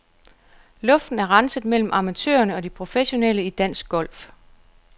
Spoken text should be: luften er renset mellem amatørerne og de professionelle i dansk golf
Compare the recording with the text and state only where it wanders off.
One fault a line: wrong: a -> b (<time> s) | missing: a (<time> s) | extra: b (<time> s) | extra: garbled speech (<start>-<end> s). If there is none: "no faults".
no faults